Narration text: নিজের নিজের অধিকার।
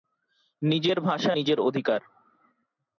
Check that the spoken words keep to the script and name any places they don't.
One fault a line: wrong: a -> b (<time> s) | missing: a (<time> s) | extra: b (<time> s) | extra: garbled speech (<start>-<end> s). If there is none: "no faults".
extra: ভাষা (1.0 s)